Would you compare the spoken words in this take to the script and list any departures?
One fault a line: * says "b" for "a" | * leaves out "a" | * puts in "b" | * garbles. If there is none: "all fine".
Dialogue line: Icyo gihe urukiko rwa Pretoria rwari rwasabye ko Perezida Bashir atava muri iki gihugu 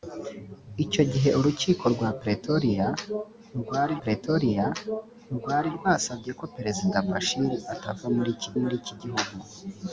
* puts in "Pretoria rwari"
* puts in "muri iki"